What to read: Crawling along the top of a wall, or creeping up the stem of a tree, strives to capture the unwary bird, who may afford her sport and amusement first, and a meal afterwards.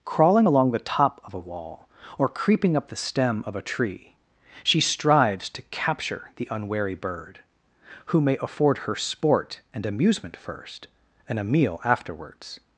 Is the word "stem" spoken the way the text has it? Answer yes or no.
yes